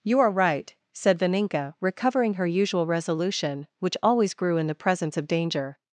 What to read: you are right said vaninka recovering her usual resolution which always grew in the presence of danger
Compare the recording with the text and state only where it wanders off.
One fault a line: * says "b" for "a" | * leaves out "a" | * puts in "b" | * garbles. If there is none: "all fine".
all fine